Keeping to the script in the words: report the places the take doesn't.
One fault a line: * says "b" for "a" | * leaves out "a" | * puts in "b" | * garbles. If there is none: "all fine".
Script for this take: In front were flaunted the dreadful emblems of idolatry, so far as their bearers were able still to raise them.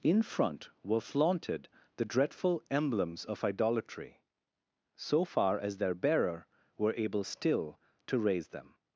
* says "bearer" for "bearers"